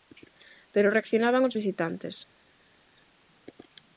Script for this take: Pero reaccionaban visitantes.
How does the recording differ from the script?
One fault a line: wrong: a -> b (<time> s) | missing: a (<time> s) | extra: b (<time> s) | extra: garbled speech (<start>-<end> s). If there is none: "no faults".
extra: os (1.5 s)